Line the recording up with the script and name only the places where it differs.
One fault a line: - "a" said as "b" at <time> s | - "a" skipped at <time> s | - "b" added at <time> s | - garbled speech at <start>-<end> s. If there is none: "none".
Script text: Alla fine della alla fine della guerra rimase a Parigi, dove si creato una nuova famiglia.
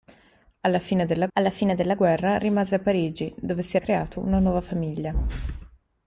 none